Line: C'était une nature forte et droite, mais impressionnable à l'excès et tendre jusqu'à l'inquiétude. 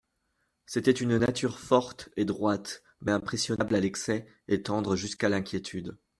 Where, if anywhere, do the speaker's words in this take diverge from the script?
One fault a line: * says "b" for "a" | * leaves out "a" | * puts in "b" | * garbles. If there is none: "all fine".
all fine